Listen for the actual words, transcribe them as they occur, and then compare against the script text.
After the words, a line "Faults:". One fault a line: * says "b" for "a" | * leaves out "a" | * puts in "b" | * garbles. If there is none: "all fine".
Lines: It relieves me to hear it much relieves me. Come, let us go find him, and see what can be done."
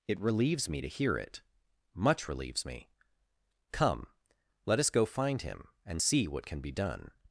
It relieves me to hear it much relieves me. Come, let us go find him, and see what can be done."
Faults:
all fine